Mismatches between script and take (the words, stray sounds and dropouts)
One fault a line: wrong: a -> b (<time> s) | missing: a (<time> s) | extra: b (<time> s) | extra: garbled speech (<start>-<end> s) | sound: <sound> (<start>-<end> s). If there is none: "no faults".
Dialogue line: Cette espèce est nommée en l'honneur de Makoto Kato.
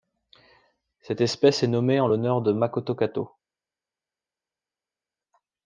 no faults